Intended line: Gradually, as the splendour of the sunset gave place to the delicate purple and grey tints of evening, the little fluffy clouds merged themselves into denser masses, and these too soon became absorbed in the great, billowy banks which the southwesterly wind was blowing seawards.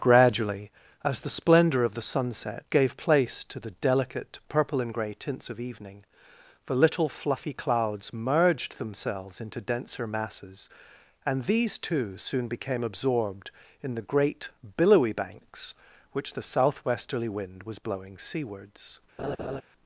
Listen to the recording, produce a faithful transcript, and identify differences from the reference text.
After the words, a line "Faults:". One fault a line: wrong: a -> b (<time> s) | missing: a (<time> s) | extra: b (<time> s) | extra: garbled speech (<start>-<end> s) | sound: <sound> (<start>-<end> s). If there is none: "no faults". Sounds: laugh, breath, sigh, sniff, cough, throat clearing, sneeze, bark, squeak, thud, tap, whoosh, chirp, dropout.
Gradually, as the splendour of the sunset gave place to the delicate purple and grey tints of evening, the little fluffy clouds merged themselves into denser masses, and these too soon became absorbed in the great, billowy banks which the southwesterly wind was blowing seawards.
Faults:
sound: laugh (19.2-19.6 s)